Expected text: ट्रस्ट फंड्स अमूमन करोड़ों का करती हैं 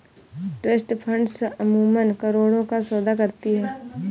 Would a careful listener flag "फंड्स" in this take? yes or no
no